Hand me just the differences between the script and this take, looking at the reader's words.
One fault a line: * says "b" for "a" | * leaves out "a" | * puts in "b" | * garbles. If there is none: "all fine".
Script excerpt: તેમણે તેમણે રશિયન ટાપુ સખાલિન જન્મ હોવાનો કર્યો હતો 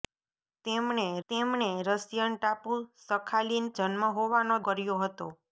all fine